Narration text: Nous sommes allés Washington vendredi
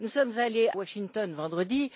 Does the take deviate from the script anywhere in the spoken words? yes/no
no